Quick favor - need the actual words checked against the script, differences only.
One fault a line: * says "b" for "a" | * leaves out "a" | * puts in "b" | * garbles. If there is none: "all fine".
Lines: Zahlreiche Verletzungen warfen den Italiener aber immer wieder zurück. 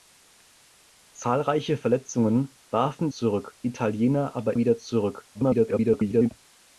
* says "zurück" for "den"
* leaves out "immer"
* garbles